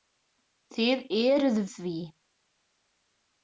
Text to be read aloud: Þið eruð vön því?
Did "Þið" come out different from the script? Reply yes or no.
no